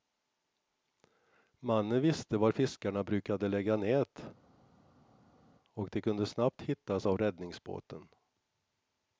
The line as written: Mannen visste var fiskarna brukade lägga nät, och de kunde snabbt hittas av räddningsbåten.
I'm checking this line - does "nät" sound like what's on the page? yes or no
yes